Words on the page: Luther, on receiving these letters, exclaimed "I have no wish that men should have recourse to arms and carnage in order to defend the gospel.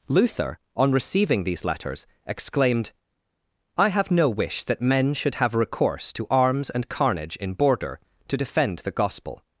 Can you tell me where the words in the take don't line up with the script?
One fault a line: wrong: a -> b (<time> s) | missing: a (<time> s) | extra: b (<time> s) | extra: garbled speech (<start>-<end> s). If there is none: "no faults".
wrong: order -> border (7.5 s)